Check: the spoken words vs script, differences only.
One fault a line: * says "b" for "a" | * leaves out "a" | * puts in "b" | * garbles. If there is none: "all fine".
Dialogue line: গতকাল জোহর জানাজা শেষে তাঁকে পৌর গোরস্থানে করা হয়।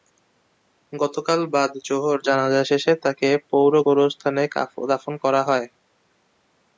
* puts in "বাদ"
* puts in "দাফন"